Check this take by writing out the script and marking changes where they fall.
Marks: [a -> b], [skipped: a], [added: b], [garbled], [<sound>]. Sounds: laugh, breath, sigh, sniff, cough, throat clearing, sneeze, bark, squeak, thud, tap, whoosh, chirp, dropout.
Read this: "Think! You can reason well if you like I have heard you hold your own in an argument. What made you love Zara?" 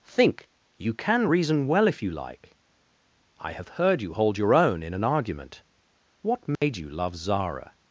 "Think! You can reason well if you like I have heard you hold your own in an argument. What made [dropout] you love Zara?"